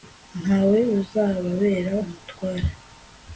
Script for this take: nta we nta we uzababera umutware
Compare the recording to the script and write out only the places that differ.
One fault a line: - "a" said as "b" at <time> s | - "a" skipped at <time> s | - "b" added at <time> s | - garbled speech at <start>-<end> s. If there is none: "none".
- "nta we" skipped at 0.8 s